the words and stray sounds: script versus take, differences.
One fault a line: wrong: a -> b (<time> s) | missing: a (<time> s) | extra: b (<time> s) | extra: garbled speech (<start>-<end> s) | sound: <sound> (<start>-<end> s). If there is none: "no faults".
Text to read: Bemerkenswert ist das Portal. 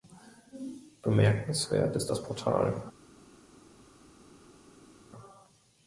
no faults